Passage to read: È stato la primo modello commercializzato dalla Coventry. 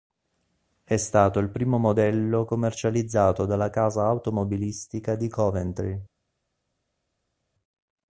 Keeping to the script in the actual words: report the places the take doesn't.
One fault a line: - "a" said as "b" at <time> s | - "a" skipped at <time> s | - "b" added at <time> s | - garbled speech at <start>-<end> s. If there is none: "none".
- "la" said as "il" at 1.4 s
- "casa automobilistica di" added at 3.7 s